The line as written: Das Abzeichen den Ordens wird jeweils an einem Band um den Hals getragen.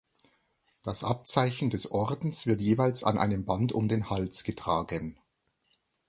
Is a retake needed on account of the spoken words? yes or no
yes